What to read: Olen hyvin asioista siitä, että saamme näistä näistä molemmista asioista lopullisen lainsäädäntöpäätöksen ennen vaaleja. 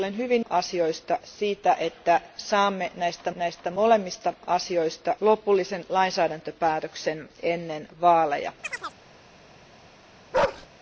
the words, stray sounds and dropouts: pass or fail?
fail